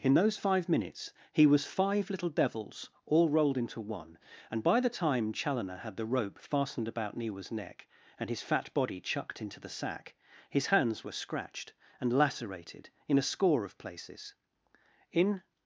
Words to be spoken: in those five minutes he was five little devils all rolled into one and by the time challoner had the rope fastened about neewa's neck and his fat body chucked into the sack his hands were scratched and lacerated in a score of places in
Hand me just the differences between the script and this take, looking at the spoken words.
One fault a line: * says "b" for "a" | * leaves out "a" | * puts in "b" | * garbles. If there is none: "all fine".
all fine